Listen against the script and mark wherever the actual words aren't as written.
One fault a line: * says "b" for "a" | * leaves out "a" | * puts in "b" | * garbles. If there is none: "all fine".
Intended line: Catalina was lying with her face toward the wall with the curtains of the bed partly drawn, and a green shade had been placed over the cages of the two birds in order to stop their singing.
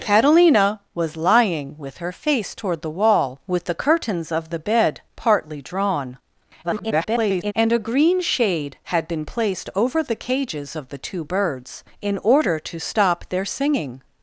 * garbles